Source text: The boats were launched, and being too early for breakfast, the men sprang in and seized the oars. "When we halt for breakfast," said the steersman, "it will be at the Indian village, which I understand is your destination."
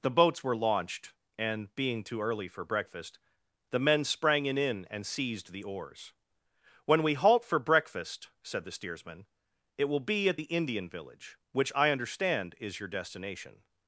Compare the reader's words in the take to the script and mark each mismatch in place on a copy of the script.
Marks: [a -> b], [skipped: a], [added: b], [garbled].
The boats were launched, and being too early for breakfast, the men sprang in [added: in] and seized the oars. "When we halt for breakfast," said the steersman, "it will be at the Indian village, which I understand is your destination."